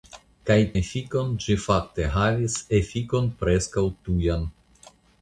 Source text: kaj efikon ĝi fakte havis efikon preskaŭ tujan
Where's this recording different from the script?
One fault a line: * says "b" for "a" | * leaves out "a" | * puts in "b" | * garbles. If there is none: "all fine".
all fine